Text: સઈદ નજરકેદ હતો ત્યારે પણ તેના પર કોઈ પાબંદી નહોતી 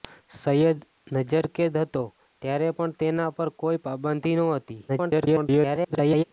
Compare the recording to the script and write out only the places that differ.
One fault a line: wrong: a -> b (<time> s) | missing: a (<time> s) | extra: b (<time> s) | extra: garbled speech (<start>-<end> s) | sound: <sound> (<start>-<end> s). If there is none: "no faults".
extra: garbled speech (4.9-6.2 s)